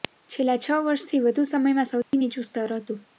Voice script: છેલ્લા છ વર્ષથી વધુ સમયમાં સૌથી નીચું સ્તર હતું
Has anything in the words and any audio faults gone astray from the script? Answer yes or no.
yes